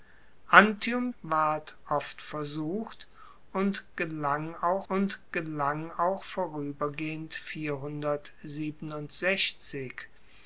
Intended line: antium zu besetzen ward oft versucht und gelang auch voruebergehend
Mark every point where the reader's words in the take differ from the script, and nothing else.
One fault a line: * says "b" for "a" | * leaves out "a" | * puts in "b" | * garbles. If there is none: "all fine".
* leaves out "zu besetzen"
* puts in "und gelang auch"